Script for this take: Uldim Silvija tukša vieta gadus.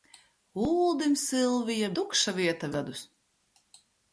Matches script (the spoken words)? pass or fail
pass